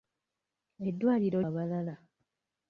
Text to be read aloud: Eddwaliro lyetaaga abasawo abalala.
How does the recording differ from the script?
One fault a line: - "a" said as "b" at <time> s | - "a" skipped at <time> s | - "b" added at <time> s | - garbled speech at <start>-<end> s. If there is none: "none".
- "lyetaaga abasawo" skipped at 1.4 s